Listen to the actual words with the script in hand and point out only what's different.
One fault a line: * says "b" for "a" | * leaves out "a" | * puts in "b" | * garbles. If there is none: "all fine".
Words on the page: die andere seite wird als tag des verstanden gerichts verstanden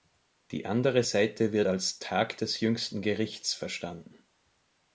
* says "jüngsten" for "verstanden"